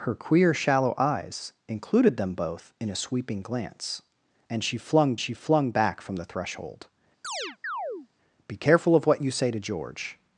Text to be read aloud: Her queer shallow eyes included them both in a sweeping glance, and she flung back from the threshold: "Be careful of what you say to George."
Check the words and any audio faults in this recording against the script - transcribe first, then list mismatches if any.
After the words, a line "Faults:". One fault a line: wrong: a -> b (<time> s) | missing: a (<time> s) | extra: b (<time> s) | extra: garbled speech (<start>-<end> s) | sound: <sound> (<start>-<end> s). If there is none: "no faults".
Her queer shallow eyes included them both in a sweeping glance, and she flung she flung back from the threshold: "Be careful of what you say to George."
Faults:
extra: she flung (5.2 s)
sound: chirp (7.2-8.1 s)